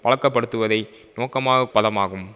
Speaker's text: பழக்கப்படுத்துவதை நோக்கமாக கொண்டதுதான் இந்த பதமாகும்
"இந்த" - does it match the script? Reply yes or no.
no